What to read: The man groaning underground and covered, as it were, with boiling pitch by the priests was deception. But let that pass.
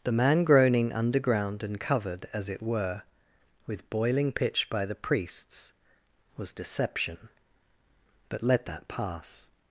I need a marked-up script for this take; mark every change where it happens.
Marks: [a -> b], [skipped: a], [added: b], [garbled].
The man groaning underground and covered, as it were, with boiling pitch by the priests was deception. But let that pass.